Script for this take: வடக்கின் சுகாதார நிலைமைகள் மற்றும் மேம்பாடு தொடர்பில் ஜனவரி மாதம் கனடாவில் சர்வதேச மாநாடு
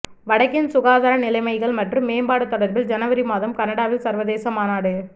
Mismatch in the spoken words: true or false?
false